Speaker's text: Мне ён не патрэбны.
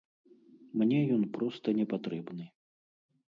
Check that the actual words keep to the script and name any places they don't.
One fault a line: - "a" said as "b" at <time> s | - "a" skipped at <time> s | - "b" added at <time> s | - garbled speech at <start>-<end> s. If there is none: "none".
- "проста" added at 1.4 s